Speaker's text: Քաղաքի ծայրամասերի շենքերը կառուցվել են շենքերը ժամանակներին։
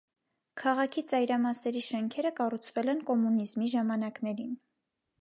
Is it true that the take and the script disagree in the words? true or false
true